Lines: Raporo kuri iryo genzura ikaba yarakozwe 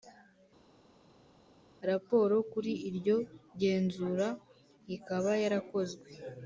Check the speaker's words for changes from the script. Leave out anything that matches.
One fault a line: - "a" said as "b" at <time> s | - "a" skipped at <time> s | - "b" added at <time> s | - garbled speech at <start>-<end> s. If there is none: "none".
none